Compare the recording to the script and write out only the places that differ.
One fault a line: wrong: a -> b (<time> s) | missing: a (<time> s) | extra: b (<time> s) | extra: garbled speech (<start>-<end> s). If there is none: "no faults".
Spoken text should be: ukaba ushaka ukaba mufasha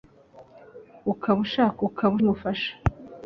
no faults